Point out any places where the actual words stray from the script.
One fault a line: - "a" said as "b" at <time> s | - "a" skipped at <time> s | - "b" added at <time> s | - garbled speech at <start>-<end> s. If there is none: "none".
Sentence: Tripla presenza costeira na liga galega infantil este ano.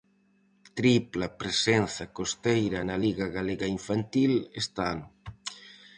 none